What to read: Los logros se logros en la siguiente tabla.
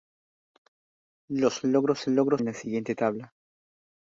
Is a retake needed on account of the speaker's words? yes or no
no